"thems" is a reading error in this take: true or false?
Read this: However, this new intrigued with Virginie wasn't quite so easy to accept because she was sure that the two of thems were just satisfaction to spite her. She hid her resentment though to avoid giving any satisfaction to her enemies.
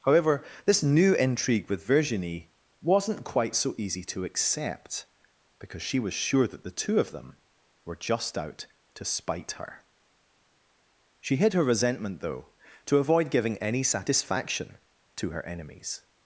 true